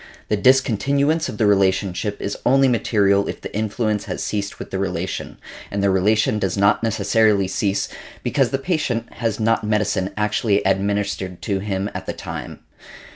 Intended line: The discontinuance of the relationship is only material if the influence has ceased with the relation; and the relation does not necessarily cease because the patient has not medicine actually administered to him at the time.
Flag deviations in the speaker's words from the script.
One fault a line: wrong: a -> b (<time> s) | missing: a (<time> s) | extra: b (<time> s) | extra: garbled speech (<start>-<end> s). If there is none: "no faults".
no faults